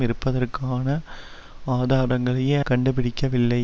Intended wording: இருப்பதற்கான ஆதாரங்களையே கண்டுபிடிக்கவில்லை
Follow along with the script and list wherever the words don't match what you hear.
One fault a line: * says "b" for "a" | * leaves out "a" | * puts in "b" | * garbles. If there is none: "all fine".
all fine